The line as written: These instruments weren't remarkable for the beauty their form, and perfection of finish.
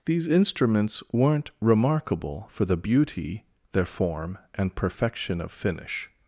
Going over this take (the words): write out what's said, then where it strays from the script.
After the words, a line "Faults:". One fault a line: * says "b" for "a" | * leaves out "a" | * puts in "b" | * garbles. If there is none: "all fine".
These instruments weren't remarkable for the beauty their form, and perfection of finish.
Faults:
all fine